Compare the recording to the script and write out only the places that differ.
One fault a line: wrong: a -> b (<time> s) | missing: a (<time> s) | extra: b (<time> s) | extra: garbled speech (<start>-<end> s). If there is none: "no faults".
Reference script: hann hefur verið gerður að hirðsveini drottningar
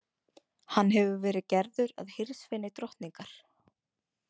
no faults